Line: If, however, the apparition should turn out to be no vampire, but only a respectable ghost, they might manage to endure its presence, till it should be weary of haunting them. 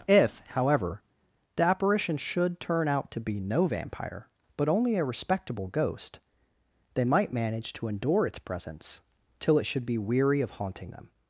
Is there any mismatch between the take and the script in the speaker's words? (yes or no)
no